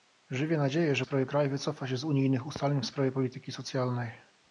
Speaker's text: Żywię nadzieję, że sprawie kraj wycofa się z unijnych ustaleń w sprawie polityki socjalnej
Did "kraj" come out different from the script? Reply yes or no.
no